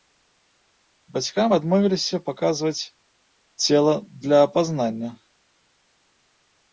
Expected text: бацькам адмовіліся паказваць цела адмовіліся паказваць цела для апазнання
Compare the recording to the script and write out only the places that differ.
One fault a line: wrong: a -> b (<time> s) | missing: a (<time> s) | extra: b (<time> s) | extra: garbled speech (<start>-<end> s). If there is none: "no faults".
missing: адмовіліся паказваць цела (3.9 s)